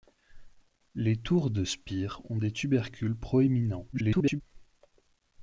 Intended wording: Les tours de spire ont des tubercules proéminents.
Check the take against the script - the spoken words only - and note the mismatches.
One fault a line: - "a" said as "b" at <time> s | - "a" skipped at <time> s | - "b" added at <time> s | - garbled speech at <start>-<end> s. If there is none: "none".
- garbled speech at 3.9-4.4 s